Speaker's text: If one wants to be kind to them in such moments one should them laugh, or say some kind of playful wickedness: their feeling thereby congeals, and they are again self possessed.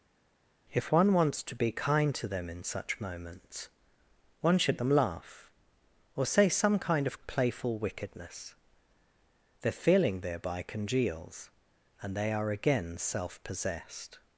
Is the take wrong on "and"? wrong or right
right